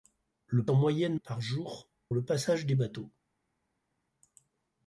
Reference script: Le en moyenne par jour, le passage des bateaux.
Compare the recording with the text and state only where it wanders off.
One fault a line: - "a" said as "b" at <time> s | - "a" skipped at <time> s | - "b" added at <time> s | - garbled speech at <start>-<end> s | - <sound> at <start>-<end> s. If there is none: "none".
none